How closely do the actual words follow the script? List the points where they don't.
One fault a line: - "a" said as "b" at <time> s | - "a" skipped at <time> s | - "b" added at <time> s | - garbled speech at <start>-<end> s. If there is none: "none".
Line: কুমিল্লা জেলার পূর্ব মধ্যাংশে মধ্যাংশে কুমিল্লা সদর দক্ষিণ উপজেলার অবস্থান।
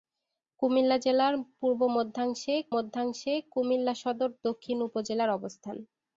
none